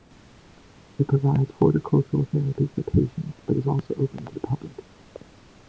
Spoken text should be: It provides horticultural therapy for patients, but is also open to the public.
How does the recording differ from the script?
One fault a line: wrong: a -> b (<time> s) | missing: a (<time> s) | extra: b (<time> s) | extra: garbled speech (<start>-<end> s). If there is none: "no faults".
no faults